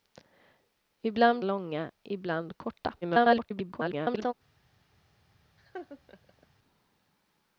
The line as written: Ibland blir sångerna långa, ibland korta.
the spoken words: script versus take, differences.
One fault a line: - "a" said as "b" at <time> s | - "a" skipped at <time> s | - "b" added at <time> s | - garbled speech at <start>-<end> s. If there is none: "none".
- "blir sångerna" skipped at 1.4 s
- garbled speech at 3.0-4.3 s